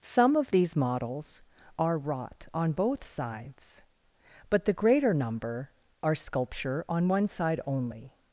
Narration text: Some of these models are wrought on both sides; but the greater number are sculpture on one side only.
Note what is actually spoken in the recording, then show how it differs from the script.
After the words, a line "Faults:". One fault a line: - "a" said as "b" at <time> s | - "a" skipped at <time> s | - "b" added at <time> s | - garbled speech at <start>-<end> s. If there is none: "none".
Some of these models are wrought on both sides; but the greater number are sculpture on one side only.
Faults:
none